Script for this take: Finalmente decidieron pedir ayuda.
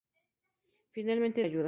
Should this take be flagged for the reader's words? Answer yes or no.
yes